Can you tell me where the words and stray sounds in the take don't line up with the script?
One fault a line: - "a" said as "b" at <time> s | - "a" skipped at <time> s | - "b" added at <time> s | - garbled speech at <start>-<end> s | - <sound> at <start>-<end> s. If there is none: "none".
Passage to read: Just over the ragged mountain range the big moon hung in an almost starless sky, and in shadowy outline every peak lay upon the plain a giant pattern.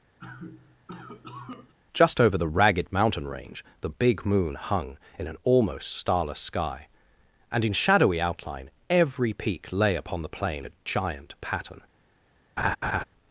- cough at 0.2-1.7 s
- laugh at 12.6-13.0 s